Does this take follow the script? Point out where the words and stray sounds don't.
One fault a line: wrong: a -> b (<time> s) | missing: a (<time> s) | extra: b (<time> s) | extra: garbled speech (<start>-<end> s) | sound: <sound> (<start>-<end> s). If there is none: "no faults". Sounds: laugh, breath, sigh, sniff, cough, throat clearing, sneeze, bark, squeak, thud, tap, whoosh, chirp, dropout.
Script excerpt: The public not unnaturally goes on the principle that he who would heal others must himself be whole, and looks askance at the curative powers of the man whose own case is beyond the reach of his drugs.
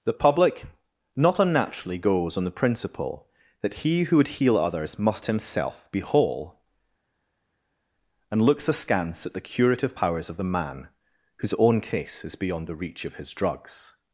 no faults